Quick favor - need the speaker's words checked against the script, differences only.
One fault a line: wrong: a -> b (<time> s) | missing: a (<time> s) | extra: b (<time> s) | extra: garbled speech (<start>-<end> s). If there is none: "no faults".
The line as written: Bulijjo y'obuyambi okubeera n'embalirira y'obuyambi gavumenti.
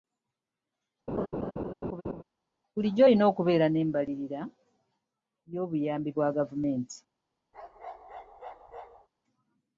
wrong: y'obuyambi -> olina (3.0 s)
extra: bwa (6.1 s)